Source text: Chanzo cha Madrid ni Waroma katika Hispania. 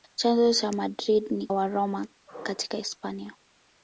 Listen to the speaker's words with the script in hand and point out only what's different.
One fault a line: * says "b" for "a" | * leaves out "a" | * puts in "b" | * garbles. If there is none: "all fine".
all fine